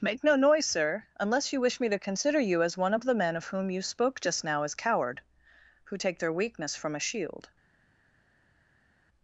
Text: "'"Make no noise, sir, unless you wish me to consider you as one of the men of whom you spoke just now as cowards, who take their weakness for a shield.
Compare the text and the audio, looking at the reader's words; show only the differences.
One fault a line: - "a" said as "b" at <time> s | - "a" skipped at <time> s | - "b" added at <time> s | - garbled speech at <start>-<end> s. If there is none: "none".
- "cowards" said as "coward" at 4.7 s
- "for" said as "from" at 6.8 s